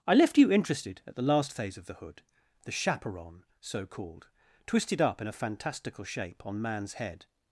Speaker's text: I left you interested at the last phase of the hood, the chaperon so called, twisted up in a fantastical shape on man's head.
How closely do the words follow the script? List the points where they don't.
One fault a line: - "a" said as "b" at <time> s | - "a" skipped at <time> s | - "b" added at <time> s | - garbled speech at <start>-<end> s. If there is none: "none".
none